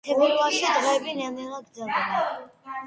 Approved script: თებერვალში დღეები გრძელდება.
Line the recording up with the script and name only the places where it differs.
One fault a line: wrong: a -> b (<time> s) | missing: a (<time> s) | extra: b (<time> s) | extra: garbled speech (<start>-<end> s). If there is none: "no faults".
extra: ნელ ნელა (1.2 s)